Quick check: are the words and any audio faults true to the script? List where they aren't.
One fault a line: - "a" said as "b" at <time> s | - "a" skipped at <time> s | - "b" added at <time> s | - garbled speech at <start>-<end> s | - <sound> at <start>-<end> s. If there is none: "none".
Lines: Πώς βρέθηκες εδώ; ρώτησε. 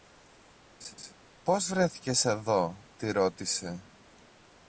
- laugh at 0.8-1.1 s
- "τη" added at 3.0 s